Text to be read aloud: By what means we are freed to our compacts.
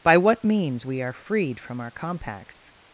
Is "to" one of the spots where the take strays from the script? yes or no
yes